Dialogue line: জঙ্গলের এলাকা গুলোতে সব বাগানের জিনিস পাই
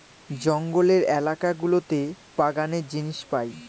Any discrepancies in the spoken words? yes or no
yes